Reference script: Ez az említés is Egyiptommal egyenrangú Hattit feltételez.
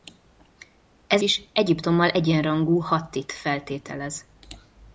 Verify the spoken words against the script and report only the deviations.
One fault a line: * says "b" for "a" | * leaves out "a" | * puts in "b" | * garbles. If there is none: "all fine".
* leaves out "az említés"